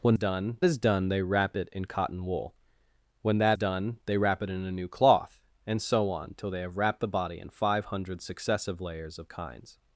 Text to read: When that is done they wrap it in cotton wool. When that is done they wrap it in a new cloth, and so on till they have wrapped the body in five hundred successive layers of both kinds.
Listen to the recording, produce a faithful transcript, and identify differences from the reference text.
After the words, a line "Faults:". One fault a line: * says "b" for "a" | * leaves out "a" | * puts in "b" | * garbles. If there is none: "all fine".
When done is done they wrap it in cotton wool. When that done they wrap it in a new cloth, and so on till they have wrapped the body in five hundred successive layers of kinds.
Faults:
* says "done" for "that"
* leaves out "is"
* leaves out "both"